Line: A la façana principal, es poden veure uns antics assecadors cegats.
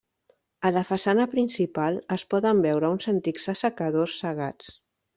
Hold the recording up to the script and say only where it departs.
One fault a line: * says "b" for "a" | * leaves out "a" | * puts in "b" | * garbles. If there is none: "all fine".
all fine